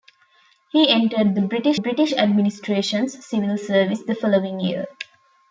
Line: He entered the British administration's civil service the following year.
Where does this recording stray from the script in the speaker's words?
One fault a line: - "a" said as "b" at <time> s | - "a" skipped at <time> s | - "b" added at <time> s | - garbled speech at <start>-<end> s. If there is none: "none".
- "British" added at 1.7 s